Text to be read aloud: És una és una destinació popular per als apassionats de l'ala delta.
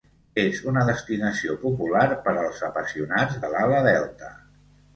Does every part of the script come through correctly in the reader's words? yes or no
no